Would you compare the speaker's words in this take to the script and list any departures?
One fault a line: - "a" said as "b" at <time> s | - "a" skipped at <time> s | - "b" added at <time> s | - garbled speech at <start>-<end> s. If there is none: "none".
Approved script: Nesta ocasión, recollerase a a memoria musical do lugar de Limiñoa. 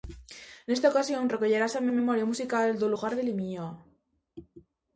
none